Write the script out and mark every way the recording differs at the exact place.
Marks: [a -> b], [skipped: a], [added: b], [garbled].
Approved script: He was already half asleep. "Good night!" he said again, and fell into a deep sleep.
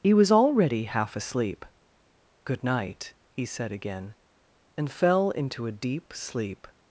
He was already half asleep. "Good night!" he said again, and fell into a deep sleep.